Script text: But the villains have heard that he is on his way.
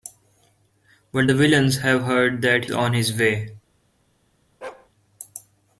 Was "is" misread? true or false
true